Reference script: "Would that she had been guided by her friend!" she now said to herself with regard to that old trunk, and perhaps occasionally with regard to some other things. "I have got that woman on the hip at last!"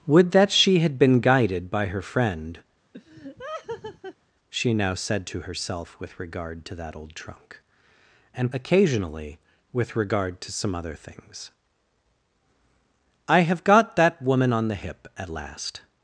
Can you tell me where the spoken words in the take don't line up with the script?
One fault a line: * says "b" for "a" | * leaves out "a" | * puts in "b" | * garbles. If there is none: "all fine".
* leaves out "perhaps"